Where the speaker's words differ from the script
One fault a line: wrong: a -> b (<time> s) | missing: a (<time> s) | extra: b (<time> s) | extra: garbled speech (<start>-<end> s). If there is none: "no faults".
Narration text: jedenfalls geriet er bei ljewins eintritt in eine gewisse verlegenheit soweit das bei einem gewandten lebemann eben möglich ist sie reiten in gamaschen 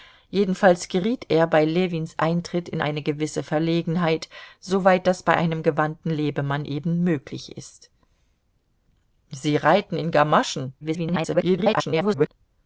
extra: garbled speech (10.8-12.3 s)